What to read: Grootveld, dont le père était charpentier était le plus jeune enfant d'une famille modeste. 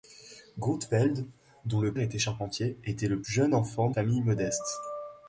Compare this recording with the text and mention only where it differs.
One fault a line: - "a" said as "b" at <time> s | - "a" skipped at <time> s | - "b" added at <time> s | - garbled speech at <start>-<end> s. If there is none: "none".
- "père" skipped at 1.9 s
- "plus" skipped at 3.2 s
- "d'une" skipped at 3.9 s